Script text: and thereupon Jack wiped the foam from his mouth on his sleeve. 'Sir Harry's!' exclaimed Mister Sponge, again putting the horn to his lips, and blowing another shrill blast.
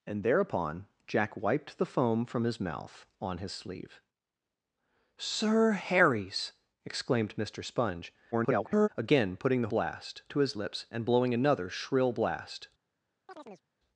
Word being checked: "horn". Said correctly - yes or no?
no